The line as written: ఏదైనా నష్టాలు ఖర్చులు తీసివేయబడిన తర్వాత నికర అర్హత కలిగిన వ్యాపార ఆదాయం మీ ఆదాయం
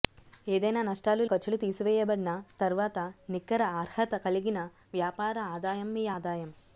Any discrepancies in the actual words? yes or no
no